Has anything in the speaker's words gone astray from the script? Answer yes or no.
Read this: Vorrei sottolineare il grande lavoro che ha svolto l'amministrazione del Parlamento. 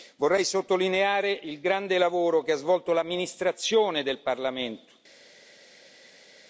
no